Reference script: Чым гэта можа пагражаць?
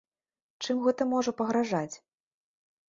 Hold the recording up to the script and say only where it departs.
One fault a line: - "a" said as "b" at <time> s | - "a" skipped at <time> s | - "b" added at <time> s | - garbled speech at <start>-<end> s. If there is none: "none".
none